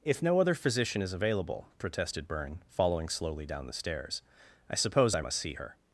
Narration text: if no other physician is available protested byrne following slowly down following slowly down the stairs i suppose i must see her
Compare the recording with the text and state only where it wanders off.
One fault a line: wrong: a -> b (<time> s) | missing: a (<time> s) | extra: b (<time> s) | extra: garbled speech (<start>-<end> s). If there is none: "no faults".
missing: following slowly down (3.7 s)